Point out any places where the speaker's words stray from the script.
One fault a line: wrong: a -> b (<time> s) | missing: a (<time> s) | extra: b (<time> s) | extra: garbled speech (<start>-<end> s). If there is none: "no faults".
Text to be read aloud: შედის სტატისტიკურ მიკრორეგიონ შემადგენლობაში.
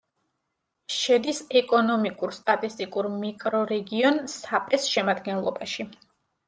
extra: ეკონომიკურ (1.6 s)
extra: საპეს (4.4 s)